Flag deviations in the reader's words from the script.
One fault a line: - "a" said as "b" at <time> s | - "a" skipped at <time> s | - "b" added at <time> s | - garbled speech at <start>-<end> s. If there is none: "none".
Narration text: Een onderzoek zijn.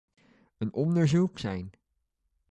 none